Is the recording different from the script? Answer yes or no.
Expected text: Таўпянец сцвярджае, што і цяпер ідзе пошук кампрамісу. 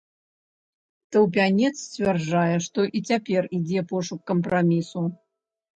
no